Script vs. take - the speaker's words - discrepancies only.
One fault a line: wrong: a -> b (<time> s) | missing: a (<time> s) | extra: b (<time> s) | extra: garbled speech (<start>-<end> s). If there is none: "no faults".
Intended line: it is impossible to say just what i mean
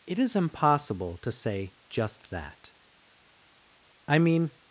wrong: what -> that (2.3 s)